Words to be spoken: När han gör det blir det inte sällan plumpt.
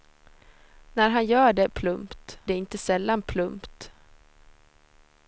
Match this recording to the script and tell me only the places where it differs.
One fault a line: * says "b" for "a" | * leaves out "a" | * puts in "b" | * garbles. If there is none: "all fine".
* says "plumpt" for "blir"